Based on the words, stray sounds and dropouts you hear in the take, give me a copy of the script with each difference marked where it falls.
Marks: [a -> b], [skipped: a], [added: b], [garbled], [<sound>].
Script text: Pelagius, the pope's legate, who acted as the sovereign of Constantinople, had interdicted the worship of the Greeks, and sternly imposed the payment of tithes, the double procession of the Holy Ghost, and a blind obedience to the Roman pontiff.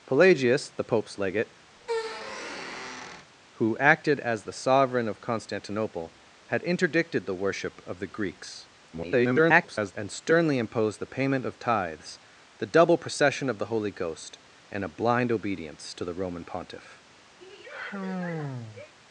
Pelagius, the pope's legate, [squeak] who acted as the sovereign of Constantinople, had interdicted the worship of the Greeks, [garbled] and sternly imposed the payment of tithes, the double procession of the Holy Ghost, and a blind obedience to the Roman pontiff. [sigh]